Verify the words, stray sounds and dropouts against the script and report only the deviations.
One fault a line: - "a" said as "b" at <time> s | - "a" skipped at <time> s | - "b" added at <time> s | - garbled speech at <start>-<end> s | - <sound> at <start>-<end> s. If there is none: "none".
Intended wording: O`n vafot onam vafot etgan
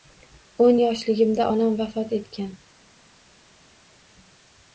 - "vafot" said as "yoshligimda" at 0.8 s